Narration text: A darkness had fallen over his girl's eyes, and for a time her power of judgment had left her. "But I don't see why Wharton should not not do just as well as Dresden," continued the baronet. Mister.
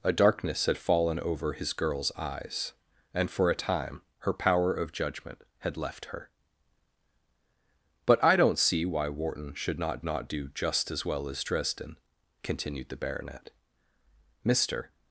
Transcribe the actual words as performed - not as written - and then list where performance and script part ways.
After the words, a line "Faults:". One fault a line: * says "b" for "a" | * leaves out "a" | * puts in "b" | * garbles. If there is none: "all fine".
A darkness had fallen over his girl's eyes, and for a time her power of judgment had left her. "But I don't see why Wharton should not not do just as well as Dresden," continued the baronet. Mister.
Faults:
all fine